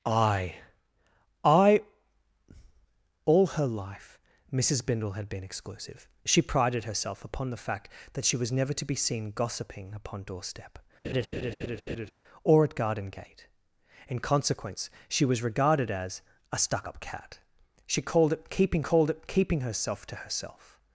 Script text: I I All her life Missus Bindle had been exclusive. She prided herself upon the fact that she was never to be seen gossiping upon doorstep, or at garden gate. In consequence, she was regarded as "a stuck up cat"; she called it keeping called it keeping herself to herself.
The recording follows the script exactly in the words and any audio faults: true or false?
false